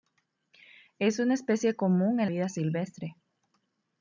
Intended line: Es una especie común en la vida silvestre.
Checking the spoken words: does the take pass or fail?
fail